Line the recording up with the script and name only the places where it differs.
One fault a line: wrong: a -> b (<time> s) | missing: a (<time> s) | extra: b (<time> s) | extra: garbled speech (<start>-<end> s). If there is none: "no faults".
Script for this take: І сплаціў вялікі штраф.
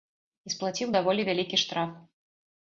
extra: даволі (1.0 s)